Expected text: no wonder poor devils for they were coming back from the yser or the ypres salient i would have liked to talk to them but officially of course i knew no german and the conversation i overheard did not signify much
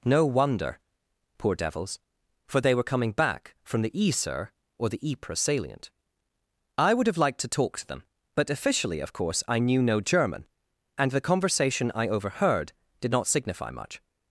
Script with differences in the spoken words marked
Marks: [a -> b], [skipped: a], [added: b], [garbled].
no wonder poor devils for they were coming back from the yser or the ypres salient i would have liked to talk to them but officially of course i knew no german and the conversation i overheard did not signify much